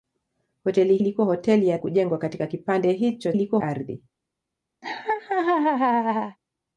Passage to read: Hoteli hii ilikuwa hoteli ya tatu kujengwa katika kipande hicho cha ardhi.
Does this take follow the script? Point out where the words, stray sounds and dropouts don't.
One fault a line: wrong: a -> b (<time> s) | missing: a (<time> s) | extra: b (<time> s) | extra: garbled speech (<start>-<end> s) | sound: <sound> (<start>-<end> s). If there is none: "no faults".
missing: hii (1.0 s)
missing: tatu (1.8 s)
wrong: cha -> ilikuwa (3.3 s)
sound: laugh (4.8-6.4 s)